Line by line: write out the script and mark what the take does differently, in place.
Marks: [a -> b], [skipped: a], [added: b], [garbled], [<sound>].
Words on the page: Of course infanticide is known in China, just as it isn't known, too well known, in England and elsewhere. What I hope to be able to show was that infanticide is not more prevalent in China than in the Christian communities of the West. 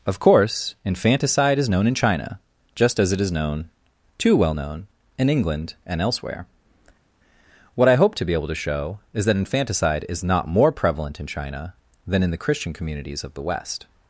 Of course infanticide is known in China, just as it [isn't -> is] known, too well known, in England and elsewhere. What I hope to be able to show [was -> is] that infanticide is not more prevalent in China than in the Christian communities of the West.